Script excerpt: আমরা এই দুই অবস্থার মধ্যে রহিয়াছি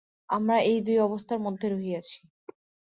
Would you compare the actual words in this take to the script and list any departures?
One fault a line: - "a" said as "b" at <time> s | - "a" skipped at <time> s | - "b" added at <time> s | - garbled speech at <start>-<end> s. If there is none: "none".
none